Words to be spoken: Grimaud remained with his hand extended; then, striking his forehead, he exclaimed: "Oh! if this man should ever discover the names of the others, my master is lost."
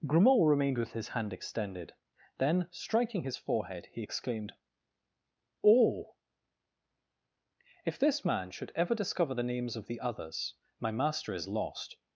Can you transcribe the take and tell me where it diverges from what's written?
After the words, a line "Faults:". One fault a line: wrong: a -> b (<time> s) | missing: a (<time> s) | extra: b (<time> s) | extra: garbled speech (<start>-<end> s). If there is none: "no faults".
Grimaud remained with his hand extended; then, striking his forehead, he exclaimed: "Oh! if this man should ever discover the names of the others, my master is lost."
Faults:
no faults